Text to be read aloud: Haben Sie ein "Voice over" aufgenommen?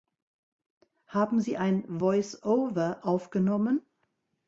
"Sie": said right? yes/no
yes